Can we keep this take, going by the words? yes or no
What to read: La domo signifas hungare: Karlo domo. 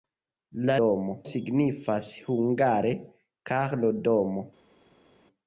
yes